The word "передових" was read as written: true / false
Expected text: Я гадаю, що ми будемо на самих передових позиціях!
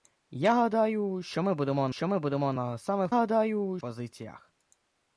false